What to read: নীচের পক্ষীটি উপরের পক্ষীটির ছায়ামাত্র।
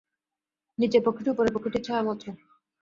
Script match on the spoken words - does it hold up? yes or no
yes